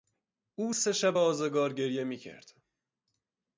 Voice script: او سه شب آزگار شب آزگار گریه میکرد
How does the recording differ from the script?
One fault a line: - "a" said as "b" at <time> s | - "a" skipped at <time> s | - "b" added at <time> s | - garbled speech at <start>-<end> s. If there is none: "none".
- "شب آزگار" skipped at 1.7 s